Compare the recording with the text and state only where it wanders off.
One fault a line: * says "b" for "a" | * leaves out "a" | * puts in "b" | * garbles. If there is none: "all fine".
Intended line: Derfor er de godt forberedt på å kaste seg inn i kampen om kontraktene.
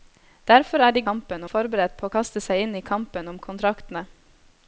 * says "kampen" for "godt"